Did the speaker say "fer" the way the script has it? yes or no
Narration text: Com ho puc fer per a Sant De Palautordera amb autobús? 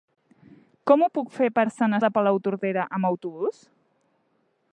yes